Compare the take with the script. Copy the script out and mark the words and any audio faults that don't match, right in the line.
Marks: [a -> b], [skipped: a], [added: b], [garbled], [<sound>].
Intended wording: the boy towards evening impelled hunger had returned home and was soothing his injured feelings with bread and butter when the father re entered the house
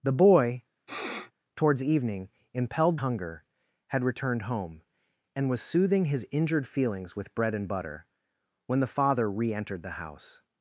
the boy [sniff] towards evening impelled hunger had returned home and was soothing his injured feelings with bread and butter when the father re entered the house